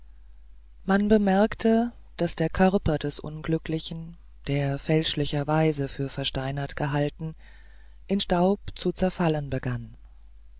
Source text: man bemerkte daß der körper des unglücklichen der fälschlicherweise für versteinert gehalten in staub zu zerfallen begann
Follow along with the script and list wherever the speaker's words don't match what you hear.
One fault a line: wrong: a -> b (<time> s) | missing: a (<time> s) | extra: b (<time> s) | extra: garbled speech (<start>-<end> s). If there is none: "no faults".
no faults